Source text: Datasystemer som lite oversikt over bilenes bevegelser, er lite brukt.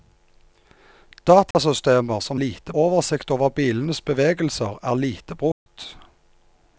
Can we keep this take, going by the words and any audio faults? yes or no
no